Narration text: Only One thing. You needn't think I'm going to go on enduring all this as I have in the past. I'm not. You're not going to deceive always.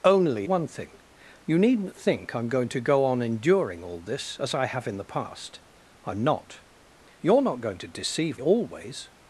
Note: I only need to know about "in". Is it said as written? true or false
true